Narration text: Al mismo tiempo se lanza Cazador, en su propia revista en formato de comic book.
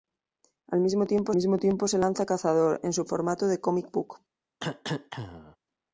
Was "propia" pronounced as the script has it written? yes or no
no